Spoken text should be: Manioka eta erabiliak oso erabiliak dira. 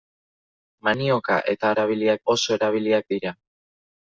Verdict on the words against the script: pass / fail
pass